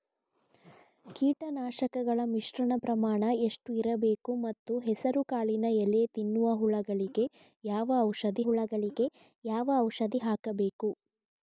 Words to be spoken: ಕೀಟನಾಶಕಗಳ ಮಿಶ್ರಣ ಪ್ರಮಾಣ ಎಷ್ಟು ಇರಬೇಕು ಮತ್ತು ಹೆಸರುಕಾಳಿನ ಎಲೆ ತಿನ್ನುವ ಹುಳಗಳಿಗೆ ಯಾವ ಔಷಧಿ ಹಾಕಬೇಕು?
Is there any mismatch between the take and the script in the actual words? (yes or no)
yes